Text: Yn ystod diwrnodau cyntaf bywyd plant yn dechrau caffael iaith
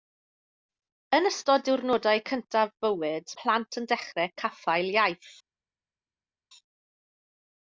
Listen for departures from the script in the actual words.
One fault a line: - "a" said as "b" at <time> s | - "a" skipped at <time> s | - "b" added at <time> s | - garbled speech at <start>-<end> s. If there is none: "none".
none